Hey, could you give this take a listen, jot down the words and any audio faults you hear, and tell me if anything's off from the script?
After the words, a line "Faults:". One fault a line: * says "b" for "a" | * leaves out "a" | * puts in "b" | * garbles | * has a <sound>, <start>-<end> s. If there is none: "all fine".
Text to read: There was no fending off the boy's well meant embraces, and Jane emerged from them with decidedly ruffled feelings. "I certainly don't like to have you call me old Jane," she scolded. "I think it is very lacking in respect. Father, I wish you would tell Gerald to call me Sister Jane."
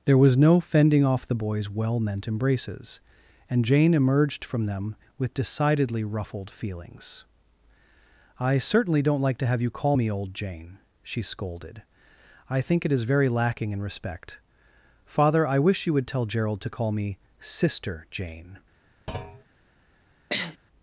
There was no fending off the boy's well meant embraces, and Jane emerged from them with decidedly ruffled feelings. "I certainly don't like to have you call me old Jane," she scolded. "I think it is very lacking in respect. Father, I wish you would tell Gerald to call me Sister Jane."
Faults:
* has a thud, 19.1-19.4 s
* has a sniff, 20.3-20.6 s